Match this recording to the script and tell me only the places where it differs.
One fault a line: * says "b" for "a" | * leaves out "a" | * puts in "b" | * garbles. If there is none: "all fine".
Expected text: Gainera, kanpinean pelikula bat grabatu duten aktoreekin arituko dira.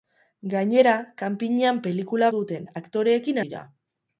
* leaves out "bat grabatu"
* leaves out "arituko"